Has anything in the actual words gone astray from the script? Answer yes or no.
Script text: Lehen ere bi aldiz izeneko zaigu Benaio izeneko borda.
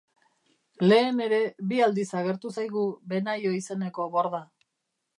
yes